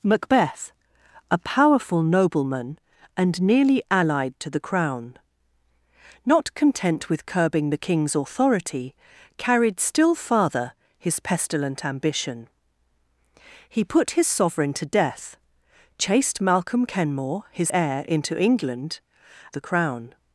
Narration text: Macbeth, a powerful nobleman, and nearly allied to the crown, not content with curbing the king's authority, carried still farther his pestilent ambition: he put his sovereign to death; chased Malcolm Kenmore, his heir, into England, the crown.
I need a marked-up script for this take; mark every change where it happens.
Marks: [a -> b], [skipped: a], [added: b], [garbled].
Macbeth, a powerful nobleman, and nearly allied to the crown, not content with curbing the king's authority, carried still farther his pestilent ambition: he put his sovereign to death; chased Malcolm Kenmore, his heir, into England, the crown.